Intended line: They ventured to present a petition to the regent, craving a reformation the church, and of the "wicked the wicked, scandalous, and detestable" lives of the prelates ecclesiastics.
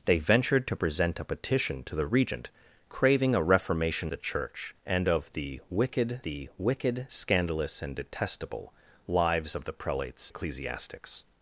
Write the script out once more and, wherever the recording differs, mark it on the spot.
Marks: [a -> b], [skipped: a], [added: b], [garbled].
They ventured to present a petition to the regent, craving a reformation the church, and of the "wicked the wicked, scandalous, and detestable" lives of the prelates ecclesiastics.